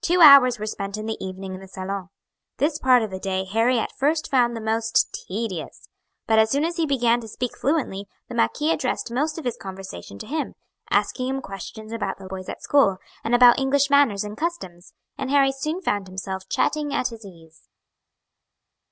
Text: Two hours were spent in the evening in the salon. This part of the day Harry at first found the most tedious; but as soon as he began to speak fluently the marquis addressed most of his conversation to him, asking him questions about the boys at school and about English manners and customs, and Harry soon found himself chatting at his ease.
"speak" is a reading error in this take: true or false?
false